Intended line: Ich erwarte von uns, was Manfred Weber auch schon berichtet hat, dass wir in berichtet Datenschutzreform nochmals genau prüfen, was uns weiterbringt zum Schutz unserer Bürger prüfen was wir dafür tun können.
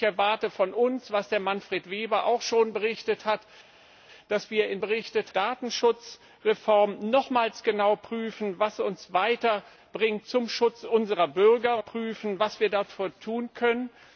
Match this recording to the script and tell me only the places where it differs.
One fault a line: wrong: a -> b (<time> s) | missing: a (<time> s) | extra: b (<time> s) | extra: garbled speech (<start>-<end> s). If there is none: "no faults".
no faults